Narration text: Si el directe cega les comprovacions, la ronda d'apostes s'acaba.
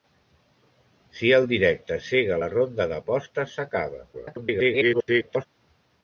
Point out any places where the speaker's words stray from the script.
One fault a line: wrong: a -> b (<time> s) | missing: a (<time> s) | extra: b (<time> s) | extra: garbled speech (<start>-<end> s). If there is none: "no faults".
missing: les comprovacions (2.4 s)
extra: garbled speech (4.1-5.5 s)